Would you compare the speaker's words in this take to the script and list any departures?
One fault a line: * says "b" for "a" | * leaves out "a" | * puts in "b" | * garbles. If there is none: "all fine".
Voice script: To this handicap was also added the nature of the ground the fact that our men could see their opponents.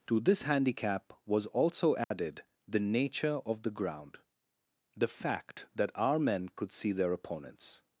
all fine